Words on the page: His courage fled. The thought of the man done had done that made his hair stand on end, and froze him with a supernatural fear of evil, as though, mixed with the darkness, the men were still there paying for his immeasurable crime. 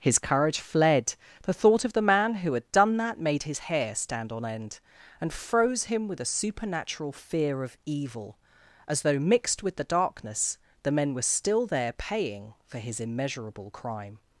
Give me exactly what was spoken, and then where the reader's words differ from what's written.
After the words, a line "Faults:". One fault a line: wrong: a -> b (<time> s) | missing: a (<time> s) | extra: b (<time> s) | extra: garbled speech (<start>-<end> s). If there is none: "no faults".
His courage fled. The thought of the man who had done that made his hair stand on end, and froze him with a supernatural fear of evil, as though, mixed with the darkness, the men were still there paying for his immeasurable crime.
Faults:
wrong: done -> who (2.3 s)